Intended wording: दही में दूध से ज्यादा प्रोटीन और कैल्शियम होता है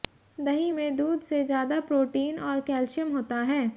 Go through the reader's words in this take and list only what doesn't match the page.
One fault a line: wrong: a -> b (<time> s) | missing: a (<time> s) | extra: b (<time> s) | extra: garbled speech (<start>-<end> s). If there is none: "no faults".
no faults